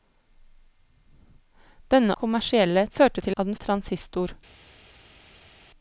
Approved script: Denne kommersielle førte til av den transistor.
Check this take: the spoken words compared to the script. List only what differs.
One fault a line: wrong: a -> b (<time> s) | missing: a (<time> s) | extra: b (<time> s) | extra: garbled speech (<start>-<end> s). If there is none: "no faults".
no faults